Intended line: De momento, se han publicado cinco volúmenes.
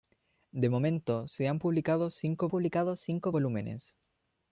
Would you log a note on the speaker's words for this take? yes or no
yes